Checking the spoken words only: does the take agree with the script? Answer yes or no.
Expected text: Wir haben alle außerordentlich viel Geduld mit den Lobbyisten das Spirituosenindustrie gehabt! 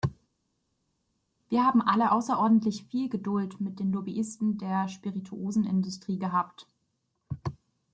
no